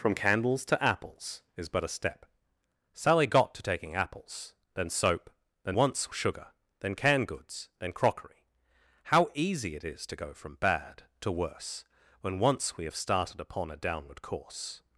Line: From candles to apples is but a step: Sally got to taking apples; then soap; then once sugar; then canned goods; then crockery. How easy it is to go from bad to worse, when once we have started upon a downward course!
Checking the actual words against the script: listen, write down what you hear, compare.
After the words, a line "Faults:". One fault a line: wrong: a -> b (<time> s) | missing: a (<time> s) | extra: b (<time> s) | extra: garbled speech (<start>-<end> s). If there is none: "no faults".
From candles to apples is but a step: Sally got to taking apples; then soap; then once sugar; then canned goods; then crockery. How easy it is to go from bad to worse, when once we have started upon a downward course!
Faults:
no faults